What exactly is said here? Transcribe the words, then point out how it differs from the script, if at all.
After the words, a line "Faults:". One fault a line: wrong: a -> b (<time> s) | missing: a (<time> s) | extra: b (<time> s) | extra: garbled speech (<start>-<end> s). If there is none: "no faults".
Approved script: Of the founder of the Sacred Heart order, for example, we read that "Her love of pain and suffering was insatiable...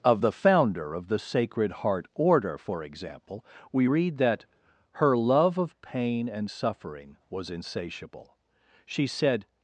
Of the founder of the Sacred Heart order, for example, we read that "Her love of pain and suffering was insatiable... She said
Faults:
extra: She said (8.8 s)